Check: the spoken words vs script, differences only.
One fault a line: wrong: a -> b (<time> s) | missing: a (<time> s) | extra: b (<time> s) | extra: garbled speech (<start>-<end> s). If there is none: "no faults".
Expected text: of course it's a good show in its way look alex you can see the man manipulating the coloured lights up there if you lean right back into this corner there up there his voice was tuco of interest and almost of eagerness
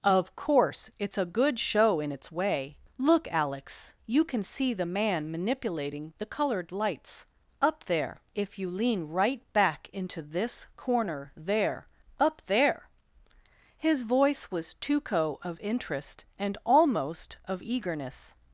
no faults